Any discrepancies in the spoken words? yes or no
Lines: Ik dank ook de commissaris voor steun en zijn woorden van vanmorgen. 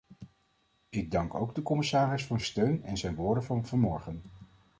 no